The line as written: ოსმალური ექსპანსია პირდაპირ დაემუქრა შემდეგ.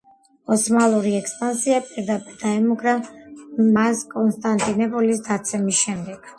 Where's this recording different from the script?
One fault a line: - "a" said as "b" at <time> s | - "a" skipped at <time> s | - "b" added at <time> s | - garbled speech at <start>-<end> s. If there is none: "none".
- "მას კონსტანტინოპოლის დაცემის" added at 3.8 s